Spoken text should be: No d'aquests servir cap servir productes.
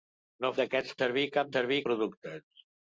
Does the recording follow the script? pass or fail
pass